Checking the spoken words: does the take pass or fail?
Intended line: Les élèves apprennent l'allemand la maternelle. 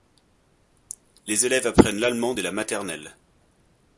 fail